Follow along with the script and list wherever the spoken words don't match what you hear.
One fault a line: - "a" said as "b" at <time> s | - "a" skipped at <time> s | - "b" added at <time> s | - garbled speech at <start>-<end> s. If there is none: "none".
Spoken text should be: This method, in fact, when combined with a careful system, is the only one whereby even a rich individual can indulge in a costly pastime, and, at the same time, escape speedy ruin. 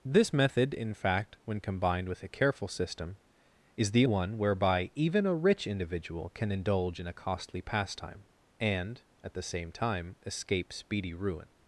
- "only" skipped at 4.0 s